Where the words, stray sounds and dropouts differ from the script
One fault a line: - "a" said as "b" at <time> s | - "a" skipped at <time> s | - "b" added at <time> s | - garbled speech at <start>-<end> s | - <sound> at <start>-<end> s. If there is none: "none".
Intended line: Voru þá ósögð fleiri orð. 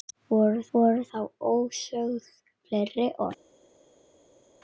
- "voru" added at 0.8 s